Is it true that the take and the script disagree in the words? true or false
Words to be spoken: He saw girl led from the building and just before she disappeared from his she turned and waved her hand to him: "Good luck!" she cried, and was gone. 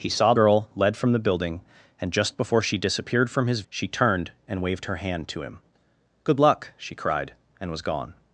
false